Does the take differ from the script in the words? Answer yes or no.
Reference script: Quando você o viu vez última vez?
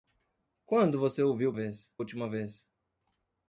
no